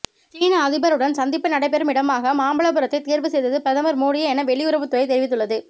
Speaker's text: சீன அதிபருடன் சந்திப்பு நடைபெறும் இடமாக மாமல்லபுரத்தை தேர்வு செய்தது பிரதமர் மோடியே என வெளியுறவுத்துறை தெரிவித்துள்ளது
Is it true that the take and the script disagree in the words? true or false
false